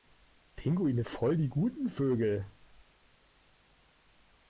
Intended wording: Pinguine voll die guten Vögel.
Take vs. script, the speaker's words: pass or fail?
pass